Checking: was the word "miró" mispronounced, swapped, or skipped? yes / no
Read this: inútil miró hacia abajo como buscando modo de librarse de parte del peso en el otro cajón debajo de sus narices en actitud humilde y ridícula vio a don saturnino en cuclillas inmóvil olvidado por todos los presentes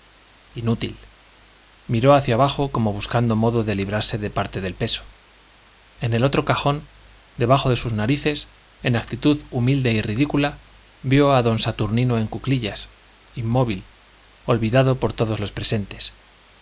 no